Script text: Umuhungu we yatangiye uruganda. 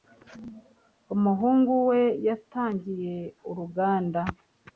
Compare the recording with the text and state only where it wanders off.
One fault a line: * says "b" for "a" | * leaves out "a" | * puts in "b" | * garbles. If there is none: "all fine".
all fine